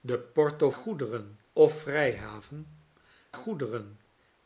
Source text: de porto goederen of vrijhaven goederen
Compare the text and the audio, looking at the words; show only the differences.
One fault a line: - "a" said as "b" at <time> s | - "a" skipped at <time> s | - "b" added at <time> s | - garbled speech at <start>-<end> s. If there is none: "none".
none